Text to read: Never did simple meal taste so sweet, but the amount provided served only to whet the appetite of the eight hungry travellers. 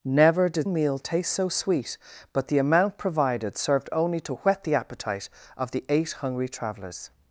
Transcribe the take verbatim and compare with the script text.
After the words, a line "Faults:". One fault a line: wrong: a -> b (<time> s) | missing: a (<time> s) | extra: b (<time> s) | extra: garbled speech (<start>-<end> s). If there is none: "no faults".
Never did meal taste so sweet, but the amount provided served only to whet the appetite of the eight hungry travellers.
Faults:
missing: simple (0.7 s)